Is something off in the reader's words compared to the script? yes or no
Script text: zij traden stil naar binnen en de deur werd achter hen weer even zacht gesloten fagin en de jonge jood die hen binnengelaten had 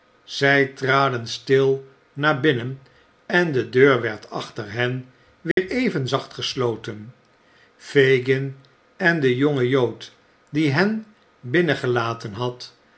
no